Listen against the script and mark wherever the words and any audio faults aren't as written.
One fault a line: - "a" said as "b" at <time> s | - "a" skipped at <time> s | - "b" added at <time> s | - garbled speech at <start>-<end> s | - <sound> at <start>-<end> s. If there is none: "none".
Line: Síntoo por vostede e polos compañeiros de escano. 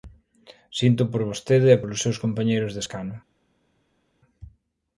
- "seus" added at 2.0 s